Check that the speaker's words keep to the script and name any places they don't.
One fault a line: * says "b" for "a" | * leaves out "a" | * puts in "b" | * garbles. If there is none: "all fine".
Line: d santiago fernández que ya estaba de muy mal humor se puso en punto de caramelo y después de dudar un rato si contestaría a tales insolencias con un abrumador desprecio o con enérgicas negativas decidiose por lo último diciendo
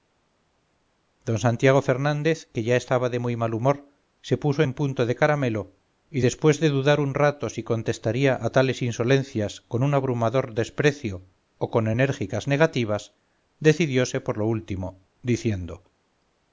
all fine